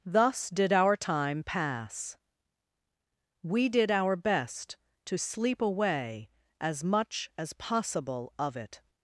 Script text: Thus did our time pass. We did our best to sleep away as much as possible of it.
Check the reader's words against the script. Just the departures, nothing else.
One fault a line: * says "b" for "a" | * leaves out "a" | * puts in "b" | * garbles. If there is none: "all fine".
all fine